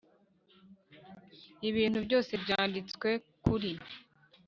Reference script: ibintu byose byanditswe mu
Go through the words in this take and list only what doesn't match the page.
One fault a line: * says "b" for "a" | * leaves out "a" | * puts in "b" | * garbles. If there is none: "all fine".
* says "kuri" for "mu"